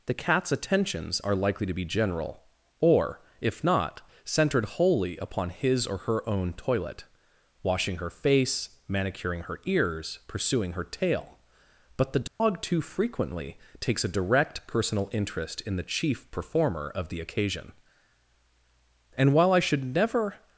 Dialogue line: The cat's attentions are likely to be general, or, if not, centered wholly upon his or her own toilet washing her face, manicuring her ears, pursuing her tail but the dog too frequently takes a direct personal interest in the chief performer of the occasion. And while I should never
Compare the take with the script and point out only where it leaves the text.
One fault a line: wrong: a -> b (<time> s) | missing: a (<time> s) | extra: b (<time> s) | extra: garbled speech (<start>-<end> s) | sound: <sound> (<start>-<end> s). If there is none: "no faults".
sound: dropout (12.3-12.4 s)